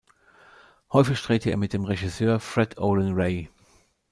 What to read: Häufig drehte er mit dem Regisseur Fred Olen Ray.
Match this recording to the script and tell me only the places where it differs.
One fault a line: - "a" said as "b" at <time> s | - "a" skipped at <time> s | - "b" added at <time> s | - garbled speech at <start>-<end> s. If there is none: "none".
none